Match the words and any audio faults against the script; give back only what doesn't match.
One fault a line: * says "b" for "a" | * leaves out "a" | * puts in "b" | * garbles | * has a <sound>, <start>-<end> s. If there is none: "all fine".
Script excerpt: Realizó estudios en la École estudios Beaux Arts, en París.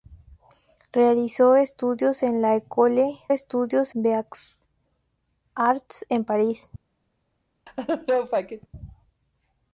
* has a laugh, 7.7-8.7 s